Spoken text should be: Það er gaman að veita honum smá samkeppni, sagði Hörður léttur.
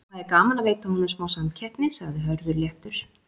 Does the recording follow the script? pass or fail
pass